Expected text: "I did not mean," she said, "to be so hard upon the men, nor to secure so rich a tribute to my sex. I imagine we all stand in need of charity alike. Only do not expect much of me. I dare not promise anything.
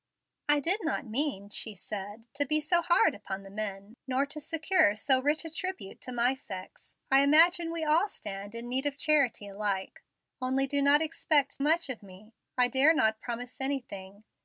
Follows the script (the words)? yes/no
yes